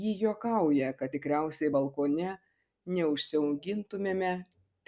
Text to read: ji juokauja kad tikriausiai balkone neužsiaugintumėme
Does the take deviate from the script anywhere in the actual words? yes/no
no